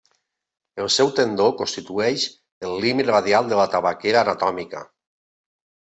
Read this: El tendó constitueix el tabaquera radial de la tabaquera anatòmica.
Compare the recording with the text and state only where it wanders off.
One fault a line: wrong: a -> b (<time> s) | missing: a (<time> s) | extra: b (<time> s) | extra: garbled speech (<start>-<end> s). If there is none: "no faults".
extra: seu (0.9 s)
wrong: tabaquera -> límit (2.9 s)